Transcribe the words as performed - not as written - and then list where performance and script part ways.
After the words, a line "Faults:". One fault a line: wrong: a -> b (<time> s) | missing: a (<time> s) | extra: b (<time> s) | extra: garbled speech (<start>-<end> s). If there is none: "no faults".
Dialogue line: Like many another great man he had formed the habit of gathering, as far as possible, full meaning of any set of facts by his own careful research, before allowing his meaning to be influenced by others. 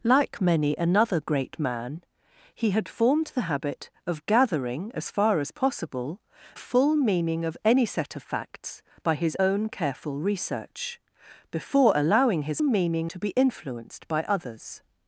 Like many another great man he had formed the habit of gathering, as far as possible, full meaning of any set of facts by his own careful research, before allowing his meaning to be influenced by others.
Faults:
no faults